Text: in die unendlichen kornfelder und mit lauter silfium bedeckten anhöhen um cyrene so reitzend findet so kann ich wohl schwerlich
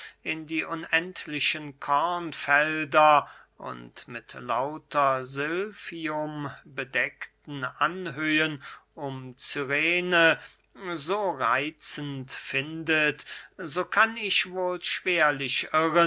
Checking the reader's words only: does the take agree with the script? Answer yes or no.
yes